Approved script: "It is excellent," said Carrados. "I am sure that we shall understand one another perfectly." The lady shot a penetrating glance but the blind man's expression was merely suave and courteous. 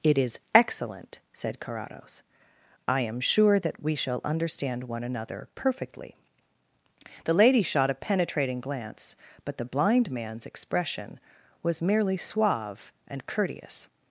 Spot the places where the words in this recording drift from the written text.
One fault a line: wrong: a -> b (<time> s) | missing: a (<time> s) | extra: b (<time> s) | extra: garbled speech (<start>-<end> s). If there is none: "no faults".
no faults